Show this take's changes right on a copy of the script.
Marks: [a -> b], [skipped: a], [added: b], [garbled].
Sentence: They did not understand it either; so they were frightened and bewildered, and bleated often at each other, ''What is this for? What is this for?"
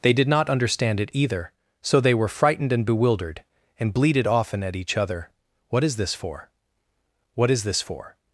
They did not understand it either; so they were frightened and bewildered, and bleated often at each other, ''What is this for? What is this for?"